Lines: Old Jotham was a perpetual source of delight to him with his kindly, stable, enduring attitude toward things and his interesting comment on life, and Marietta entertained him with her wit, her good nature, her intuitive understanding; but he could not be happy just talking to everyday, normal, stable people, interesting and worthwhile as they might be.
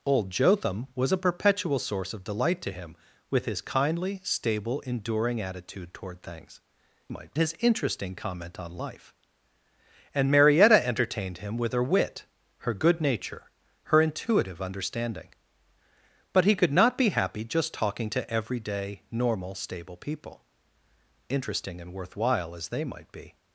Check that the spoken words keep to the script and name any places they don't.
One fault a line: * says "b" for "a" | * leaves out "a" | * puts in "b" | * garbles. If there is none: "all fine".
* says "might" for "and"